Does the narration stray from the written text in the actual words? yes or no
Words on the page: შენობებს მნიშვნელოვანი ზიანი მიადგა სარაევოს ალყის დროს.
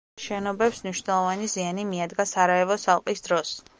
no